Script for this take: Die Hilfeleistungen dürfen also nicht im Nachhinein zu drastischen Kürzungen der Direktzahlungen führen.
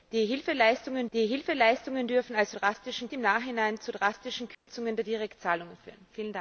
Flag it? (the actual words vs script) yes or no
yes